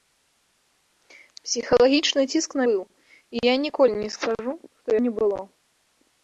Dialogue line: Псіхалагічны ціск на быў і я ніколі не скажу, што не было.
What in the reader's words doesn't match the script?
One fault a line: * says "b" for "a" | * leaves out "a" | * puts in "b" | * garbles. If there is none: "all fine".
all fine